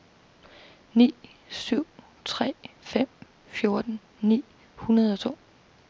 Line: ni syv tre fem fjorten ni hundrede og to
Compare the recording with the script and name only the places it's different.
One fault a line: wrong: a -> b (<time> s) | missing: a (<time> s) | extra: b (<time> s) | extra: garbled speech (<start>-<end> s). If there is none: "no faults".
no faults